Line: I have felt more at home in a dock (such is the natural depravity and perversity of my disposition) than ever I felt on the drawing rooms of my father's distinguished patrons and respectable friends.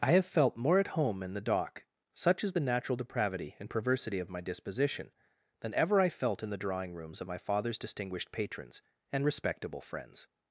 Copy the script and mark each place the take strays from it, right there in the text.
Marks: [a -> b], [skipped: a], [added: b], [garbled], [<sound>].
I have felt more at home in [a -> the] dock (such is the natural depravity and perversity of my disposition) than ever I felt [on -> in] the drawing rooms of my father's distinguished patrons and respectable friends.